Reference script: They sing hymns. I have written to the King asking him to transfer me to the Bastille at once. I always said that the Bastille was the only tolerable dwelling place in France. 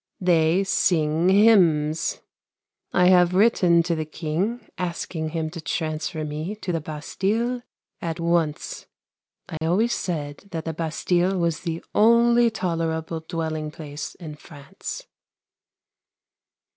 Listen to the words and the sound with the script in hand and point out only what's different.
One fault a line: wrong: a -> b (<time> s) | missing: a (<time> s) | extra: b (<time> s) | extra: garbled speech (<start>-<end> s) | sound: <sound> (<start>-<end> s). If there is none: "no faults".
sound: dropout (9.6-9.6 s)